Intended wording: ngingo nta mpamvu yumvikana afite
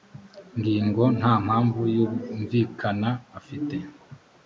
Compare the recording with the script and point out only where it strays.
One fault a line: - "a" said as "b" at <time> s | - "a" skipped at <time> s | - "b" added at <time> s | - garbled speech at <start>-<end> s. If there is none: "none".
none